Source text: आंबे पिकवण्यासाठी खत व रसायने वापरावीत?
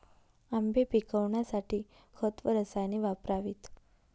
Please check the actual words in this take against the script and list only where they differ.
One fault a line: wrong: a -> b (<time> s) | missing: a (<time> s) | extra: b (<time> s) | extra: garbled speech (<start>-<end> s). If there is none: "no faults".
no faults